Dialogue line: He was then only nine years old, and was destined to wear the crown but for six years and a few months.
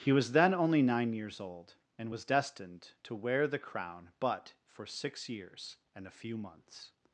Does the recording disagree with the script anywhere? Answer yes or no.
no